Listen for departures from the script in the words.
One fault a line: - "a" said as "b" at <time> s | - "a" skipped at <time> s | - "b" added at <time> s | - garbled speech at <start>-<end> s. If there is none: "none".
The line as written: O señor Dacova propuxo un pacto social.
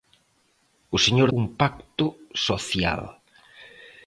- "Dacova propuxo" skipped at 1.3 s